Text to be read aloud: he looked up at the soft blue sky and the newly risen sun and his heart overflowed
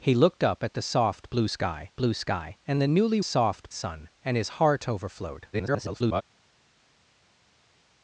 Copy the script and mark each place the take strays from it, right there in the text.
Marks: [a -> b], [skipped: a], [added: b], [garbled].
he looked up at the soft blue sky [added: blue sky] and the newly [risen -> soft] sun and his heart overflowed [garbled]